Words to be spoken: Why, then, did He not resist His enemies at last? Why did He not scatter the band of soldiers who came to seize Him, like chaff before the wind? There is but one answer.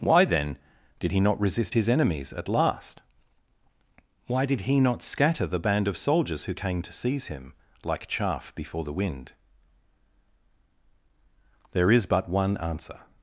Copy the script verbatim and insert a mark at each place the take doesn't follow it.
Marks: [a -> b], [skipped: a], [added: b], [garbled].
Why, then, did He not resist His enemies at last? Why did He not scatter the band of soldiers who came to seize Him, like chaff before the wind? There is but one answer.